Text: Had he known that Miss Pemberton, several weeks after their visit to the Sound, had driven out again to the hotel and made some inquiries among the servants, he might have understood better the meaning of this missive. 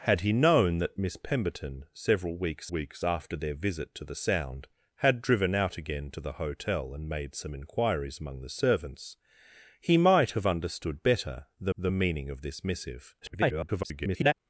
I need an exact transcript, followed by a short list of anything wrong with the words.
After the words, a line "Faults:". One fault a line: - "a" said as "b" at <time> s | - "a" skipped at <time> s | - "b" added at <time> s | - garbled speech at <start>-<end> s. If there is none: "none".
Had he known that Miss Pemberton, several weeks weeks after their visit to the Sound, had driven out again to the hotel and made some inquiries among the servants, he might have understood better the the meaning of this missive. [garbled]
Faults:
- "weeks" added at 2.7 s
- "the" added at 11.8 s
- garbled speech at 13.2-14.3 s